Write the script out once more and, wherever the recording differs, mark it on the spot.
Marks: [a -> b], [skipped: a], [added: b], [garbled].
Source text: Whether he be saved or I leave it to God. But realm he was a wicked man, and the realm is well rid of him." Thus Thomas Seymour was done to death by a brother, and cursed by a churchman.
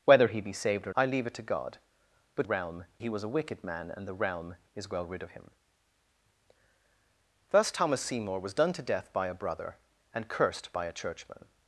Whether he be saved or I leave it to God. But realm he was a wicked man, and the realm is well rid of him." Thus Thomas Seymour was done to death by a brother, and cursed by a churchman.